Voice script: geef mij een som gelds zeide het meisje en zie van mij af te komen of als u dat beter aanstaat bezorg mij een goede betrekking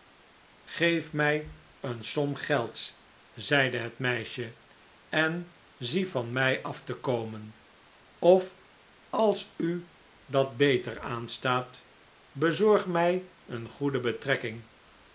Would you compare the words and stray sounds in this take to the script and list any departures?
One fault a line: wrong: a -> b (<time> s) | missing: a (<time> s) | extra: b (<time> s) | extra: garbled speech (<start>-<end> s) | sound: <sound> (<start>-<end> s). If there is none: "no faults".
no faults